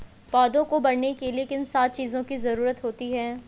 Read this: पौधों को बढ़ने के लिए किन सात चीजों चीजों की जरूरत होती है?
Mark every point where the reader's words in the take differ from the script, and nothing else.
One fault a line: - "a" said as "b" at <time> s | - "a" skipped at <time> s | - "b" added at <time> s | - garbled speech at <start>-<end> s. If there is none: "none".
- "चीजों" skipped at 2.2 s